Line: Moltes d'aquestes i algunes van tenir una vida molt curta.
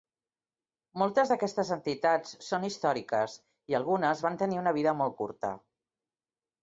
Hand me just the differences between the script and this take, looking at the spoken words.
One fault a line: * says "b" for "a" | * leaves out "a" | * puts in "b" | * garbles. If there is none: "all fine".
* puts in "entitats són històriques"